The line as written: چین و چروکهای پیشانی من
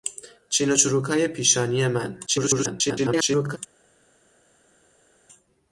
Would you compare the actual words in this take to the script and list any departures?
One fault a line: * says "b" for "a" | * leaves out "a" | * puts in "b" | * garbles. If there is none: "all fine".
* garbles